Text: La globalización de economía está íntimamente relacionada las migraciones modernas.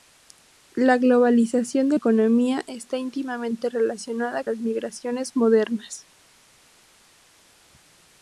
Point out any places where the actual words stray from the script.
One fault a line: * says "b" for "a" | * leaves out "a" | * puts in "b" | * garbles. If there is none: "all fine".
all fine